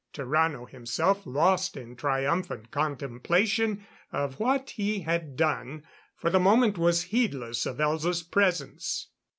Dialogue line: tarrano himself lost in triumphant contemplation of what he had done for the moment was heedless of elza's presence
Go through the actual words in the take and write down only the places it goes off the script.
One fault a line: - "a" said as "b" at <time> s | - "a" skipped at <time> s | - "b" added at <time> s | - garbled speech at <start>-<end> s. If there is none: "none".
none